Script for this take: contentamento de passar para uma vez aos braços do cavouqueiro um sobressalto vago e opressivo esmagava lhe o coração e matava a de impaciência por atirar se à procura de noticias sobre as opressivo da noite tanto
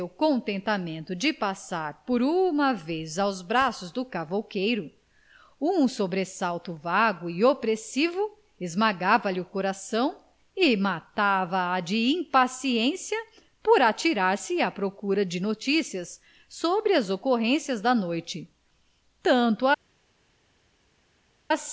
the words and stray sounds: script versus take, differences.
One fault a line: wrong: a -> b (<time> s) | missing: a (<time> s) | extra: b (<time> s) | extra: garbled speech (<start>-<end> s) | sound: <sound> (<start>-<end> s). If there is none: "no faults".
wrong: para -> por (2.0 s)
wrong: opressivo -> ocorrências (17.1 s)